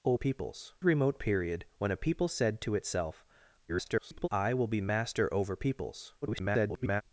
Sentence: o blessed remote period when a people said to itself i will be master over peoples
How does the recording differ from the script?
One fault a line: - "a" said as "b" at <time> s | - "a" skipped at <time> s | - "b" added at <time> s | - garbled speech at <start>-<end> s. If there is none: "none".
- "blessed" said as "peoples" at 0.1 s
- garbled speech at 3.7-4.3 s
- garbled speech at 6.2-7.0 s